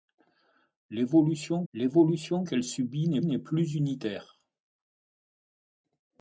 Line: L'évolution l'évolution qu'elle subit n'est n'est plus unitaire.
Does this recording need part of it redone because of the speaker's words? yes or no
no